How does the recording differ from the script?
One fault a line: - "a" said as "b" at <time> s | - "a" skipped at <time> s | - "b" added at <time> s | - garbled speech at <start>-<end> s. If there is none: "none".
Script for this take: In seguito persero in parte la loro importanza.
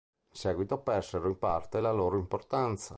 none